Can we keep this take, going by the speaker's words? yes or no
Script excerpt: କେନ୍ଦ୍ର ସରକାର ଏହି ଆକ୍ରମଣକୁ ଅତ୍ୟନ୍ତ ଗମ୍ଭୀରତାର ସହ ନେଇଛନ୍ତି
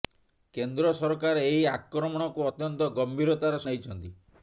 no